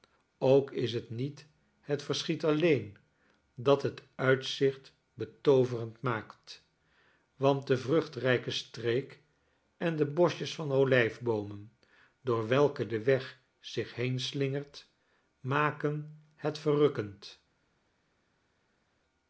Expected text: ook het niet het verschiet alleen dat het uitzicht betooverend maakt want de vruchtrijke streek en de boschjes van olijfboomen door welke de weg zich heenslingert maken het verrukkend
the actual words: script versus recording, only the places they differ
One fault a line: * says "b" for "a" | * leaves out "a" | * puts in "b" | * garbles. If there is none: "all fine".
* puts in "is"